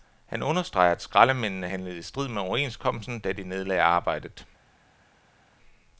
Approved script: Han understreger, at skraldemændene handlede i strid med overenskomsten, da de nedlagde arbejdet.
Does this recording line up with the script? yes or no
yes